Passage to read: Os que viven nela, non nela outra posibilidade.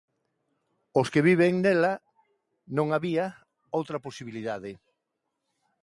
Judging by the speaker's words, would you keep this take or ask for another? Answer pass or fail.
fail